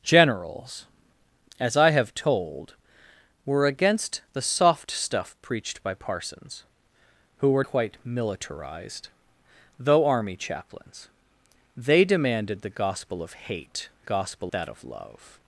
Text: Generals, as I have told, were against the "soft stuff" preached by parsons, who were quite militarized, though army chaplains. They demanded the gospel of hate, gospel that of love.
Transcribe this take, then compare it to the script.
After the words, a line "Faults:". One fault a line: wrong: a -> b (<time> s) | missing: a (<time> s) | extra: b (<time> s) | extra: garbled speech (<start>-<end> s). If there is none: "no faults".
Generals, as I have told, were against the "soft stuff" preached by parsons, who were quite militarized, though army chaplains. They demanded the gospel of hate, gospel that of love.
Faults:
no faults